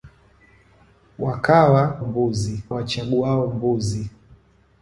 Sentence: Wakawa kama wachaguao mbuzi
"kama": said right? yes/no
no